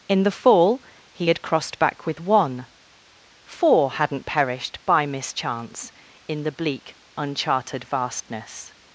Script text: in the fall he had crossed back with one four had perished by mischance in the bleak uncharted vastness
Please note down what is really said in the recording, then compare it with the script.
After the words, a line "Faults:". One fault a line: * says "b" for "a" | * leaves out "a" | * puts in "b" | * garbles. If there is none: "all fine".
in the fall he had crossed back with one four hadn't perished by mischance in the bleak uncharted vastness
Faults:
* says "hadn't" for "had"